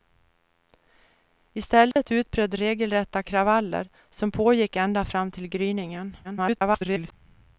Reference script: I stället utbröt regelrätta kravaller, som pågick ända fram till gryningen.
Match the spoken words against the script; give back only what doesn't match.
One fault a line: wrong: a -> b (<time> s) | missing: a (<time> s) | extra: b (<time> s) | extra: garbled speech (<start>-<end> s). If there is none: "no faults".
extra: garbled speech (6.2-7.1 s)